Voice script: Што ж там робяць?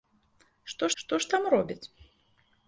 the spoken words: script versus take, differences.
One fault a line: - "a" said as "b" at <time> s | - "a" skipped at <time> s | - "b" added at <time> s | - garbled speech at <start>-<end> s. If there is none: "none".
- "што" added at 1.0 s